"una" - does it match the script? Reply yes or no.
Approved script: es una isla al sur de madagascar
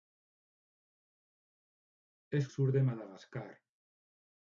no